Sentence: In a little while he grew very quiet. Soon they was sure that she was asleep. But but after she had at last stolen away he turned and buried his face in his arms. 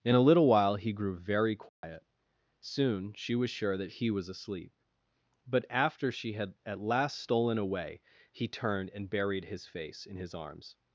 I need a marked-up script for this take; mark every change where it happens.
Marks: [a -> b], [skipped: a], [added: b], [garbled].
In a little while he grew very quiet. Soon [they -> she] was sure that [she -> he] was asleep. But [skipped: but] after she had at last stolen away he turned and buried his face in his arms.